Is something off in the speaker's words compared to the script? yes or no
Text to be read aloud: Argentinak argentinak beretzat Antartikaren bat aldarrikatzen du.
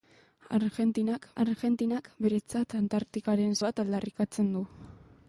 no